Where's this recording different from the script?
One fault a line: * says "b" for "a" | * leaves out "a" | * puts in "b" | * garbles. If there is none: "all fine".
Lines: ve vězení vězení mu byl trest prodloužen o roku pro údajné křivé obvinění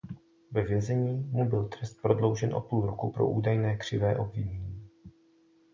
* leaves out "vězení"
* puts in "půl"